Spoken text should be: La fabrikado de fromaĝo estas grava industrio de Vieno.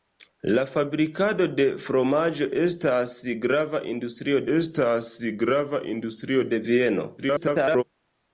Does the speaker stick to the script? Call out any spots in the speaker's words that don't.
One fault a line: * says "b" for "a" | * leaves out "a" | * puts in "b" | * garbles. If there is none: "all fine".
* puts in "estas grava industrio"
* garbles